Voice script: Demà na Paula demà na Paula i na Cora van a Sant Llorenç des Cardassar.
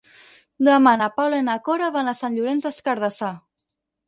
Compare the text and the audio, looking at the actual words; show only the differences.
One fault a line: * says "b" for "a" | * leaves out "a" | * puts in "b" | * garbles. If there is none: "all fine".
* leaves out "demà na Paula"